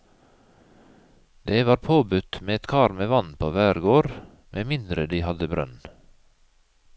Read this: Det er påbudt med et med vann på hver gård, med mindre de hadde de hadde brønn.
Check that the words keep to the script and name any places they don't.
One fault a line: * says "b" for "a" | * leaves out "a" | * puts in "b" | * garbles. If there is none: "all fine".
* says "var" for "er"
* puts in "kar"
* leaves out "de hadde"